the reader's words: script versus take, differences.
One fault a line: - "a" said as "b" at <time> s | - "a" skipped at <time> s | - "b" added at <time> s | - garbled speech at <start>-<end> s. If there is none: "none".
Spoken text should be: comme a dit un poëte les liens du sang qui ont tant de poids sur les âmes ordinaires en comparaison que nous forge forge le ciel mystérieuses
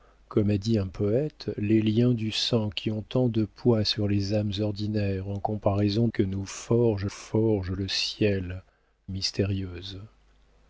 none